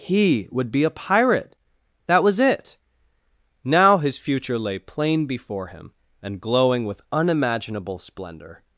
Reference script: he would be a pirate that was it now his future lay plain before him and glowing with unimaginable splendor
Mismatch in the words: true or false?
false